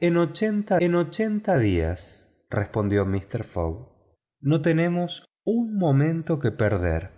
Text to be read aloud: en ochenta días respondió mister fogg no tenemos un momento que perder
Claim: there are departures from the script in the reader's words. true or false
true